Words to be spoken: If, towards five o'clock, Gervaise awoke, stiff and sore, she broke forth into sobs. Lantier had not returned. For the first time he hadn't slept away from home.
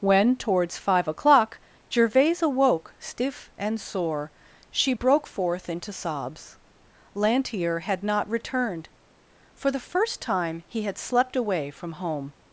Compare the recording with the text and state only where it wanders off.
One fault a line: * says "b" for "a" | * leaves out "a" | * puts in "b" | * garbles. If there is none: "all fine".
* says "When" for "If"
* says "had" for "hadn't"